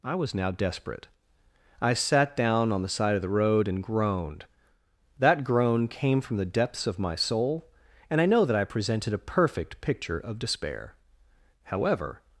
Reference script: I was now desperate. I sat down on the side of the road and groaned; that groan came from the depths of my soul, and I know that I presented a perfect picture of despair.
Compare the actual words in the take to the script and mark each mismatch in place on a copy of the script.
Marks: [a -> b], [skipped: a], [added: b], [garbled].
I was now desperate. I sat down on the side of the road and groaned; that groan came from the depths of my soul, and I know that I presented a perfect picture of despair. [added: However]